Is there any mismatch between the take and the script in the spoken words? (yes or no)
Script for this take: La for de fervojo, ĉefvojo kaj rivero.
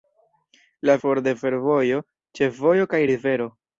no